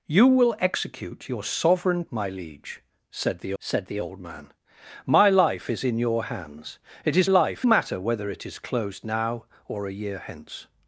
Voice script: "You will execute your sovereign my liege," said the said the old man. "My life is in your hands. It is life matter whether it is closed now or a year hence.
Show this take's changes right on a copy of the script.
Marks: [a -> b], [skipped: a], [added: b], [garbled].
"You will execute your sovereign my liege," said the said the old man. "My life is in your hands. It is life matter whether it is closed now or a year hence.